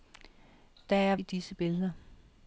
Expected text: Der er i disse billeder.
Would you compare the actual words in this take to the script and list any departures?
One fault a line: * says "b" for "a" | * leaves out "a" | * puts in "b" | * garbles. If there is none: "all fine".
all fine